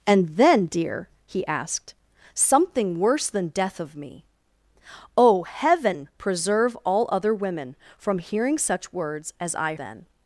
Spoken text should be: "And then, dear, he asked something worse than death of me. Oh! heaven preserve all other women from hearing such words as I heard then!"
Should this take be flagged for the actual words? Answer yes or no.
yes